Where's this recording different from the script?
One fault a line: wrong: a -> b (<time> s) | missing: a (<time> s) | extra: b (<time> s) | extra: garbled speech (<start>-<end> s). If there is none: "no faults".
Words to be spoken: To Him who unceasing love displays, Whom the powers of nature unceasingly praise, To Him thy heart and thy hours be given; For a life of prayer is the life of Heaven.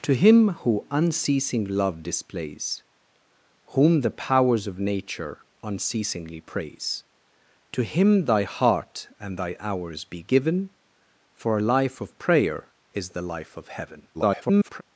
extra: garbled speech (14.1-14.8 s)